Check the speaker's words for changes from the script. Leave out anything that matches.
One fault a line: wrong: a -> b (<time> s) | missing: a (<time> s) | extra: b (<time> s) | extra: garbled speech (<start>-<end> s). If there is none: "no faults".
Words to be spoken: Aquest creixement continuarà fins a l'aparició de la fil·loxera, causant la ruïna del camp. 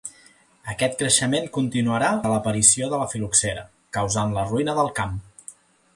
missing: fins (2.1 s)